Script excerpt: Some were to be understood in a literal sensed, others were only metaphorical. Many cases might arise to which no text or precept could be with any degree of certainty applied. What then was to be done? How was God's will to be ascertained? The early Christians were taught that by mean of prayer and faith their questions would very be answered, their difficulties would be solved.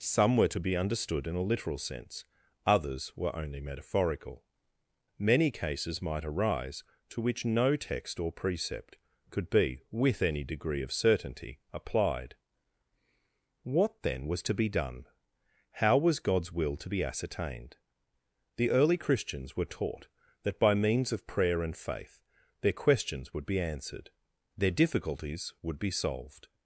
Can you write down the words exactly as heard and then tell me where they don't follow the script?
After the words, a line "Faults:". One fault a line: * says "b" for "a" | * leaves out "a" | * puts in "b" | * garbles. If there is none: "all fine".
Some were to be understood in a literal sense, others were only metaphorical. Many cases might arise to which no text or precept could be with any degree of certainty applied. What then was to be done? How was God's will to be ascertained? The early Christians were taught that by means of prayer and faith their questions would be answered, their difficulties would be solved.
Faults:
* says "sense" for "sensed"
* says "means" for "mean"
* leaves out "very"